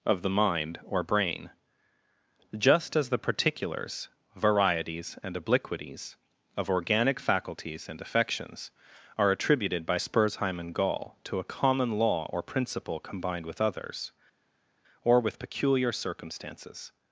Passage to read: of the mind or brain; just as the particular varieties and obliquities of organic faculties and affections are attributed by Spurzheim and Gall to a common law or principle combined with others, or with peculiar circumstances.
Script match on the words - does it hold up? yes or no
no